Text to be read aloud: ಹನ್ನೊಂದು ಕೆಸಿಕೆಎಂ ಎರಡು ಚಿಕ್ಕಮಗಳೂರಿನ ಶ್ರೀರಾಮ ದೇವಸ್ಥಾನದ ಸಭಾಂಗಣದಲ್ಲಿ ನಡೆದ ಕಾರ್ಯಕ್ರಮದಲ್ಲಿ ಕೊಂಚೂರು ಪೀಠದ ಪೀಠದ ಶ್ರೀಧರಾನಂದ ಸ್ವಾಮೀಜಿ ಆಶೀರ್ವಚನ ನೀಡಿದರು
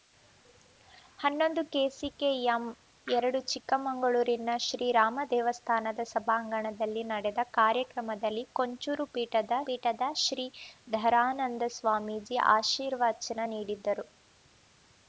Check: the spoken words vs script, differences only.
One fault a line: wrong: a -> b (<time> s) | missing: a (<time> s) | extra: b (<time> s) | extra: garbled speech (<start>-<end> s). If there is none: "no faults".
no faults